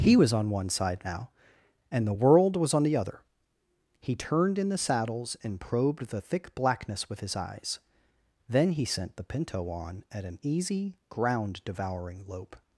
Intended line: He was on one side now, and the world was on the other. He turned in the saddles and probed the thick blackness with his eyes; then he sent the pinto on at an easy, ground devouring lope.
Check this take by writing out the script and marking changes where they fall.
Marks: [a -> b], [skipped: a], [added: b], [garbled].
He was on one side now, and the world was on the other. He turned in the saddles and probed the thick blackness with his eyes; then he sent the pinto on at an easy, ground devouring lope.